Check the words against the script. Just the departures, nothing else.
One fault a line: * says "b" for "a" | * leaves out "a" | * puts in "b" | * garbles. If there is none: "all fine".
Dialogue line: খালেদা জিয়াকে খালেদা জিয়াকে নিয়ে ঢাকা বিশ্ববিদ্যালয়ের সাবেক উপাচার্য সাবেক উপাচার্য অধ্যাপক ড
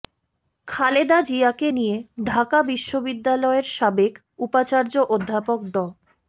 * leaves out "খালেদা জিয়াকে"
* leaves out "সাবেক উপাচার্য"